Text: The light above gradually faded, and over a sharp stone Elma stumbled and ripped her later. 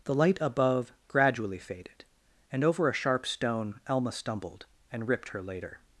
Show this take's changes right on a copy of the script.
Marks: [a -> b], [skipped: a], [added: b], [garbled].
The light above gradually faded, and over a sharp stone Elma stumbled and ripped her later.